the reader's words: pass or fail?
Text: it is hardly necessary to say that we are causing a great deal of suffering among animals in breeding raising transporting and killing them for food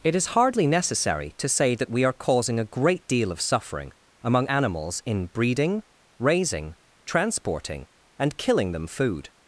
fail